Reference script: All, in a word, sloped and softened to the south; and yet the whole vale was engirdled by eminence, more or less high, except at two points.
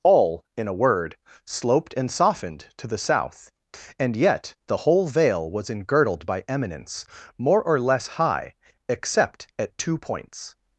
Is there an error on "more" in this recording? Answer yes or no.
no